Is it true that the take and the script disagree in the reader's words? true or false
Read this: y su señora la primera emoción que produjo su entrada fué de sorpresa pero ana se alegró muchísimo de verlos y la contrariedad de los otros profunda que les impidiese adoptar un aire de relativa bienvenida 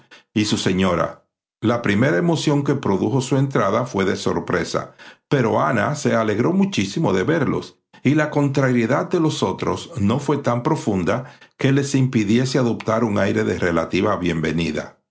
true